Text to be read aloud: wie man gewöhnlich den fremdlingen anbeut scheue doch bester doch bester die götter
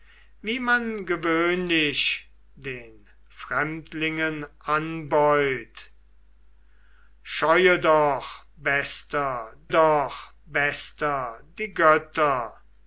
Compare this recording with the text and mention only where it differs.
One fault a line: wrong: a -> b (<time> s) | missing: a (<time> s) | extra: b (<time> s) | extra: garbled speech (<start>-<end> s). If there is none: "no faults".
no faults